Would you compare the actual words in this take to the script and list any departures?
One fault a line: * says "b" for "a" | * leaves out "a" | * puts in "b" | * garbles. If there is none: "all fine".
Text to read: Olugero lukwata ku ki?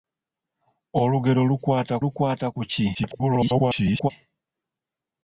* puts in "lukwata"
* garbles